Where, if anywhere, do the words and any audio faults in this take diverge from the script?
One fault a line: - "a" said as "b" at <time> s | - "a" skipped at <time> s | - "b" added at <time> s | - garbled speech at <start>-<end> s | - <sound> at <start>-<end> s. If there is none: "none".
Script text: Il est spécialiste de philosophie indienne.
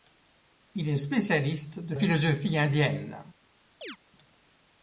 - chirp at 3.8-4.0 s